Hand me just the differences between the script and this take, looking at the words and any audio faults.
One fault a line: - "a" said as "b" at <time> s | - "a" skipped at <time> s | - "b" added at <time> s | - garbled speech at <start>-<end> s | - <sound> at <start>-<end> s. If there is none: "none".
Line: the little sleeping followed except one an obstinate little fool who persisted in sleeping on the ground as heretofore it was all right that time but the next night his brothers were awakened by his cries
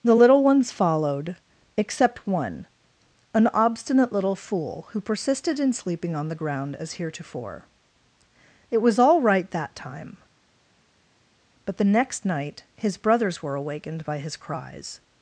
- "sleeping" said as "ones" at 0.4 s